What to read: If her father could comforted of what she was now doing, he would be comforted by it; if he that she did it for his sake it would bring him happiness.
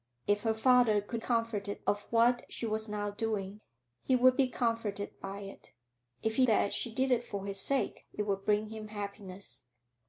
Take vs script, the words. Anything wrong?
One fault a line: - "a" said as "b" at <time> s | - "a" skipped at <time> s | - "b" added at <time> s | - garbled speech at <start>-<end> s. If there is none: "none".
none